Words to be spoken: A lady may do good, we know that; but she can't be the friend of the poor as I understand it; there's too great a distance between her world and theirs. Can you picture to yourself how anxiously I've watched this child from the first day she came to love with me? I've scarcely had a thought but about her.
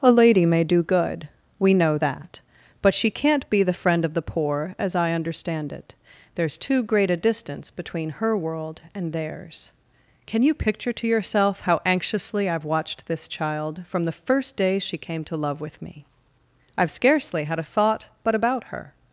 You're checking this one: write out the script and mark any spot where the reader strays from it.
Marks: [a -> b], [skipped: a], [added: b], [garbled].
A lady may do good, we know that; but she can't be the friend of the poor as I understand it; there's too great a distance between her world and theirs. Can you picture to yourself how anxiously I've watched this child from the first day she came to love with me? I've scarcely had a thought but about her.